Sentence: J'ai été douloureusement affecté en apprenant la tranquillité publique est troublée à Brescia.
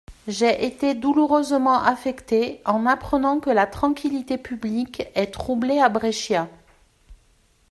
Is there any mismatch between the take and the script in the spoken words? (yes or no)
yes